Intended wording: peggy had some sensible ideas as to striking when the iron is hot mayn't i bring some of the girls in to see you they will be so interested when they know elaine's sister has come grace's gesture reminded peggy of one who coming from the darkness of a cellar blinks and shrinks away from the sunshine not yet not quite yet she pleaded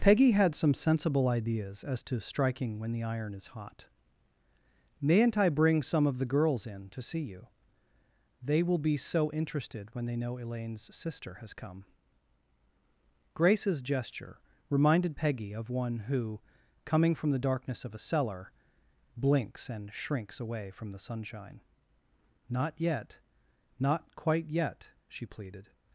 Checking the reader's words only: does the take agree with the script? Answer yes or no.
yes